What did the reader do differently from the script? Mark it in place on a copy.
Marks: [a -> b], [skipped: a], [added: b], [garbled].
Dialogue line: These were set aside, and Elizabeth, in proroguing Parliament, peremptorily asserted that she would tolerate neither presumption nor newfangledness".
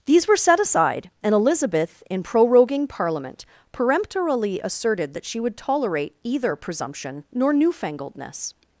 These were set aside, and Elizabeth, in proroguing Parliament, peremptorily asserted that she would tolerate [neither -> either] presumption nor newfangledness".